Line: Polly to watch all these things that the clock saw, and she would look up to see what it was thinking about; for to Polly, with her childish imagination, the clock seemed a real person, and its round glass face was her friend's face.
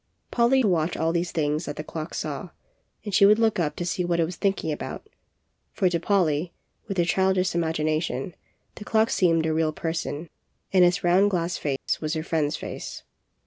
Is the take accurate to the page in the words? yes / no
yes